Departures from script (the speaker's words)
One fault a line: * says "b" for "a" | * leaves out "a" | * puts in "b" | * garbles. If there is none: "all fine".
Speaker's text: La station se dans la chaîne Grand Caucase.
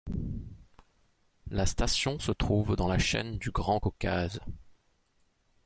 * puts in "trouve"
* puts in "du"